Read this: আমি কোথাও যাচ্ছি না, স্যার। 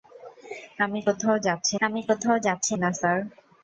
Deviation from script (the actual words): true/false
true